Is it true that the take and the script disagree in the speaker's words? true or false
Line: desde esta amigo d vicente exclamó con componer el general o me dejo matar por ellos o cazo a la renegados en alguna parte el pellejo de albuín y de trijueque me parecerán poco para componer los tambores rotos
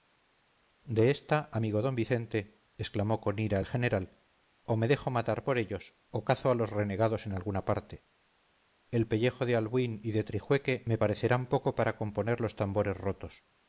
true